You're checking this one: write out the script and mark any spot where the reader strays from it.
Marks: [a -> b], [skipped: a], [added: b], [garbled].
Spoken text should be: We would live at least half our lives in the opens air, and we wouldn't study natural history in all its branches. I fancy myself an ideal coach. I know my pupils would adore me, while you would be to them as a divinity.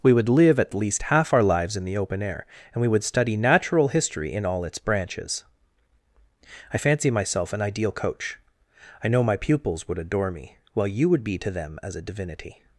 We would live at least half our lives in the [opens -> open] air, and we [wouldn't -> would] study natural history in all its branches. I fancy myself an ideal coach. I know my pupils would adore me, while you would be to them as a divinity.